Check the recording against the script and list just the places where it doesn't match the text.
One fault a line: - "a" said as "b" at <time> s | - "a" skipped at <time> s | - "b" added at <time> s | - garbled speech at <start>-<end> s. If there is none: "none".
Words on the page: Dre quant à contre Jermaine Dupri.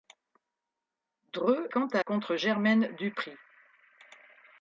none